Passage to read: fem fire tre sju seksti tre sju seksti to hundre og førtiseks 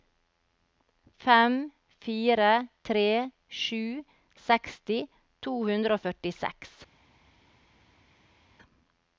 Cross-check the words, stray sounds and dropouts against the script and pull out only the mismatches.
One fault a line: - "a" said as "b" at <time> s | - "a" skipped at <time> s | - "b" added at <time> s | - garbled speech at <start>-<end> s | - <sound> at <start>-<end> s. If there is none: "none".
- "tre sju seksti" skipped at 5.0 s